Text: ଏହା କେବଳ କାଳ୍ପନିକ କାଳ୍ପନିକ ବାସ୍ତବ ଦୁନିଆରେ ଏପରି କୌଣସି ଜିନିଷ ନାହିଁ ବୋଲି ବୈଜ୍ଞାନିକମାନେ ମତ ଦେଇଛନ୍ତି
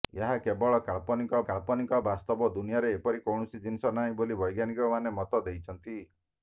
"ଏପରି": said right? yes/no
yes